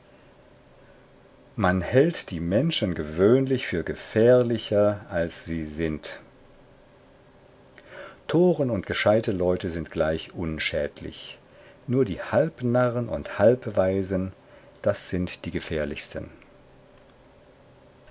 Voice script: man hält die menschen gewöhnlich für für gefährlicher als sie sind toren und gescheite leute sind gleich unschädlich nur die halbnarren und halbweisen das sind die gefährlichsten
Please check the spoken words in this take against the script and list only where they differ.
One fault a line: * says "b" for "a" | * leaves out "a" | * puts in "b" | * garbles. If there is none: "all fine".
* leaves out "für"